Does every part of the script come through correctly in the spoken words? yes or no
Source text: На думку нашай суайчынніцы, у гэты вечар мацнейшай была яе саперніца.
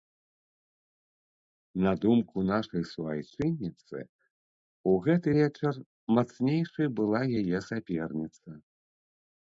yes